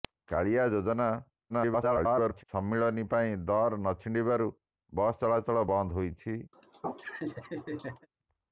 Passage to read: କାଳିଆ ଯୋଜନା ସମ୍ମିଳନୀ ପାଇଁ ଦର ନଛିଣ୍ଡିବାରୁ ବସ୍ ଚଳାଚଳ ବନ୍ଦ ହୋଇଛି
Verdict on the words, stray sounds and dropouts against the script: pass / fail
fail